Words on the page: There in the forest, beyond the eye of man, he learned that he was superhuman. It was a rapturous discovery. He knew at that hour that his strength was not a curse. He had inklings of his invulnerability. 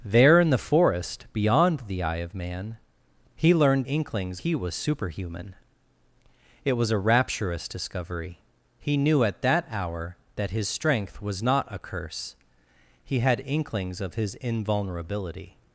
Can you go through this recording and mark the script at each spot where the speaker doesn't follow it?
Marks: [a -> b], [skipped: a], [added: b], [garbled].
There in the forest, beyond the eye of man, he learned [that -> inklings] he was superhuman. It was a rapturous discovery. He knew at that hour that his strength was not a curse. He had inklings of his invulnerability.